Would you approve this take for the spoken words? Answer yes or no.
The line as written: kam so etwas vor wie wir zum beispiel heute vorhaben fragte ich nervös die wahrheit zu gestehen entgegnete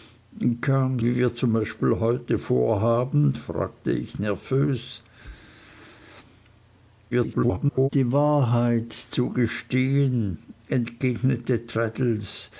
no